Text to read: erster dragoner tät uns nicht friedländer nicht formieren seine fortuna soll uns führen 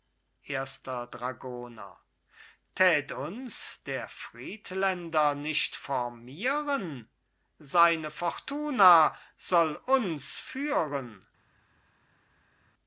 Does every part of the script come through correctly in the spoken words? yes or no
no